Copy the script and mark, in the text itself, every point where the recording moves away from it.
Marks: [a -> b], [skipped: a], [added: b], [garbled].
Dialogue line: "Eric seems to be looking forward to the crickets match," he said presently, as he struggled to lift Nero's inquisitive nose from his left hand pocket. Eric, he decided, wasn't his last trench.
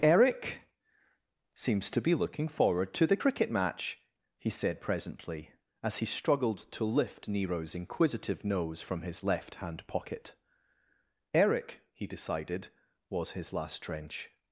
"Eric seems to be looking forward to the [crickets -> cricket] match," he said presently, as he struggled to lift Nero's inquisitive nose from his left hand pocket. Eric, he decided, [wasn't -> was] his last trench.